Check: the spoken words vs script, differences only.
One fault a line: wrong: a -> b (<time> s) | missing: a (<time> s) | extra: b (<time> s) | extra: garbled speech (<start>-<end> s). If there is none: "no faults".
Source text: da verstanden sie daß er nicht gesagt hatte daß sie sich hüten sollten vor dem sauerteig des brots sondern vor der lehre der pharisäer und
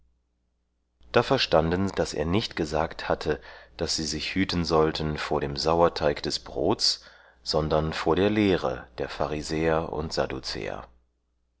missing: sie (1.9 s)